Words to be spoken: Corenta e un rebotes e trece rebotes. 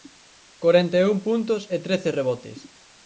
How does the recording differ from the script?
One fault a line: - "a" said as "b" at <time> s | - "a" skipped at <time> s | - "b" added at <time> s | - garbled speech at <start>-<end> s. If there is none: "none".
- "rebotes" said as "puntos" at 1.3 s